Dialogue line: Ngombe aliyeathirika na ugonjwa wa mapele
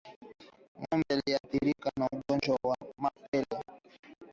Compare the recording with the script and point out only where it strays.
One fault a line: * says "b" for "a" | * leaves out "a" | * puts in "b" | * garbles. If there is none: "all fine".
all fine